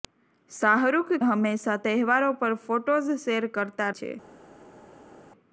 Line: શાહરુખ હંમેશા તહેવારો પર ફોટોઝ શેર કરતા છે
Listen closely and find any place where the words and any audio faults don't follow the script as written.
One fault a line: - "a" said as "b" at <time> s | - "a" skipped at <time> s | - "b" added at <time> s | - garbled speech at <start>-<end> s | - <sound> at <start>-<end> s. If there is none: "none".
none